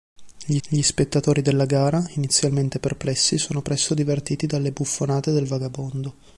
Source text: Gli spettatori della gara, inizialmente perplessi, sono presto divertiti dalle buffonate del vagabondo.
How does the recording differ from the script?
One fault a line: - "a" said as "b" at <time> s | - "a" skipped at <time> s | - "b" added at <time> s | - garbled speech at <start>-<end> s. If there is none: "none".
- "gli" added at 0.7 s